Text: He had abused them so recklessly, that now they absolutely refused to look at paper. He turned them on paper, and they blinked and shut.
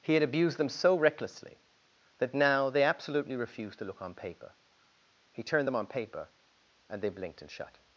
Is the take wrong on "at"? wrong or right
wrong